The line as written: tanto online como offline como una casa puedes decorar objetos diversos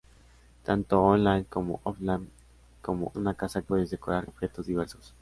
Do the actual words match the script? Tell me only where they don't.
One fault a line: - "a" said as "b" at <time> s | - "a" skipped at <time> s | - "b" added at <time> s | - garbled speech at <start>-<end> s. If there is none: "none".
none